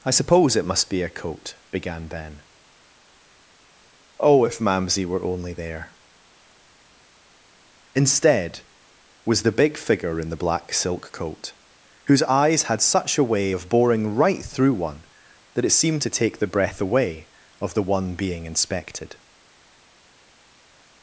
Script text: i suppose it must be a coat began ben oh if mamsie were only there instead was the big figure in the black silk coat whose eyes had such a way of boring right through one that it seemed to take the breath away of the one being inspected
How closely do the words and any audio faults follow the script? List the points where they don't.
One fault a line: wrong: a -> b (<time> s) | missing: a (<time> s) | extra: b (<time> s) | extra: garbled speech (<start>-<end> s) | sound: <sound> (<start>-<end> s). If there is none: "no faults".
no faults